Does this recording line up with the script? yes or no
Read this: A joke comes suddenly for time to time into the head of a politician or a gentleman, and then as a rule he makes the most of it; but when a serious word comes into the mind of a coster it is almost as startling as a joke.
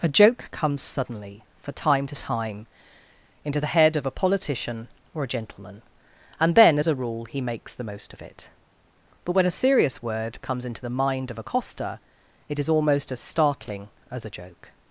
yes